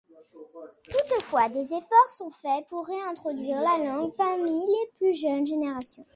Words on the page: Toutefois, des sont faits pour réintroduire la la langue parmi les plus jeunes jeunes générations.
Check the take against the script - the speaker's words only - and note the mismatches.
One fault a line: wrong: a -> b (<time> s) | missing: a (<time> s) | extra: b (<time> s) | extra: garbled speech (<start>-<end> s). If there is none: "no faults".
extra: efforts (1.7 s)
missing: la (3.8 s)
missing: jeunes (5.5 s)